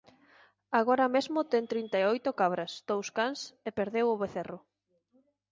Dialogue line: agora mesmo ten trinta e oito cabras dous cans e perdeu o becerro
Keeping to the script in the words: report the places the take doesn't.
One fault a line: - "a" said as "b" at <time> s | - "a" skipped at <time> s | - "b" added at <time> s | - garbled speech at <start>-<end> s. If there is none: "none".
none